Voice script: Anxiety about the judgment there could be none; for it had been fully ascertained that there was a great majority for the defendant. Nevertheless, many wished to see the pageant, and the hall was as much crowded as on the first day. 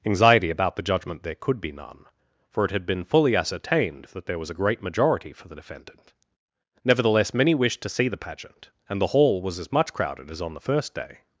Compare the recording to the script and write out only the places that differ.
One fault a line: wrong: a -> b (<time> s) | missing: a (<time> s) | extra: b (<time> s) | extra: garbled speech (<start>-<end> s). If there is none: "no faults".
no faults